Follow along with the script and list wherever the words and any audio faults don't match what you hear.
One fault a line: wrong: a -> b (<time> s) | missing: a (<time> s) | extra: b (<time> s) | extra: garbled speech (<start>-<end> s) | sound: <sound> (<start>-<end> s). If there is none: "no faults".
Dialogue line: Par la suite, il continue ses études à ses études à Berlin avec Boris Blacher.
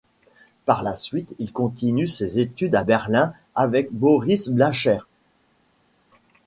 missing: ses études à (2.8 s)